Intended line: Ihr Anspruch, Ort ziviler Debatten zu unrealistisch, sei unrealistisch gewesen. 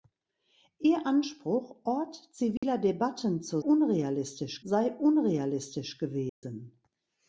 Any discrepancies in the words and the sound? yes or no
yes